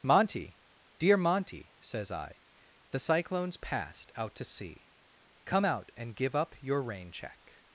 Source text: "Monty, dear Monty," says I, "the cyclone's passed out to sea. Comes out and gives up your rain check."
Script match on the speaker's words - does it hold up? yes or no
no